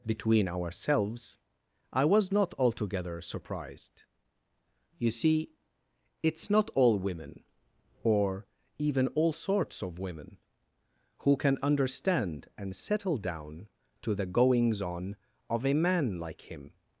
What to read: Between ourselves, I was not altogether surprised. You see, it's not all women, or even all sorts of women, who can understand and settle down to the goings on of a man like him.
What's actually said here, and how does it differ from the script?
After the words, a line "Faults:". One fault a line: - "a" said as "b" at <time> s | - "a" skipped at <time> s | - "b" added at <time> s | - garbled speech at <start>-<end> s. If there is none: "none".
Between ourselves, I was not altogether surprised. You see, it's not all women, or even all sorts of women, who can understand and settle down to the goings on of a man like him.
Faults:
none